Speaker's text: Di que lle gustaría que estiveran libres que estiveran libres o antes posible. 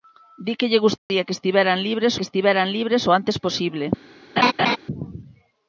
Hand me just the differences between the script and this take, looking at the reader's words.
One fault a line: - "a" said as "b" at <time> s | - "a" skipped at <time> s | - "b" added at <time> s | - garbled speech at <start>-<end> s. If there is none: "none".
none